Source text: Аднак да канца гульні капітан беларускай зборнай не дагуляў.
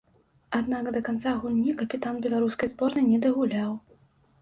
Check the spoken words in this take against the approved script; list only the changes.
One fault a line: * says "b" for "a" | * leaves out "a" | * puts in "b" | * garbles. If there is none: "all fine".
all fine